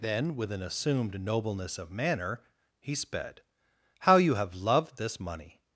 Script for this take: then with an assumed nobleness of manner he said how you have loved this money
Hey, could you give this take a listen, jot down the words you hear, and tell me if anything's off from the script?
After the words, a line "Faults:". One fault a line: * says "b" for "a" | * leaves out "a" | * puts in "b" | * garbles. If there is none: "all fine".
then with an assumed nobleness of manner he sped how you have loved this money
Faults:
* says "sped" for "said"